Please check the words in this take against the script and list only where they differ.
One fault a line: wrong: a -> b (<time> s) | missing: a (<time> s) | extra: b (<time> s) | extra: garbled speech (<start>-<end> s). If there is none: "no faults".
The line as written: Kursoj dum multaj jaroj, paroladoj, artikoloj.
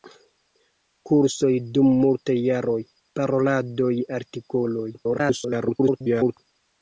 extra: garbled speech (4.9-6.4 s)